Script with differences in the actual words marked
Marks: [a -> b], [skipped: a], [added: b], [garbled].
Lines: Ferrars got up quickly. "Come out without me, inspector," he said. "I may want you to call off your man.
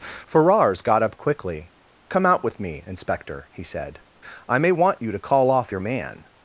Ferrars got up quickly. "Come out [without -> with] me, inspector," he said. "I may want you to call off your man.